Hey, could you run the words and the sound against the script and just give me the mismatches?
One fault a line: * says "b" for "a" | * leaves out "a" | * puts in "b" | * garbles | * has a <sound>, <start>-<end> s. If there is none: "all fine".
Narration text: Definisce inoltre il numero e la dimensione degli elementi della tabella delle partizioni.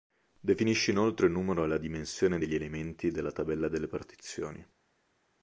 all fine